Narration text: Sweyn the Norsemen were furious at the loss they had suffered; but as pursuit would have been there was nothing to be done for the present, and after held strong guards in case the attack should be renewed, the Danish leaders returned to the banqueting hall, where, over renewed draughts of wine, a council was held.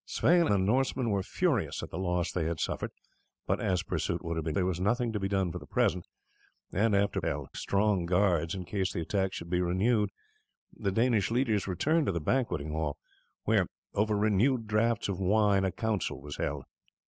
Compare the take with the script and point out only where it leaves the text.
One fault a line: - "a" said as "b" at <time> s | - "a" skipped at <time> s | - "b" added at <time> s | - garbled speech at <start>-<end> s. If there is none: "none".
none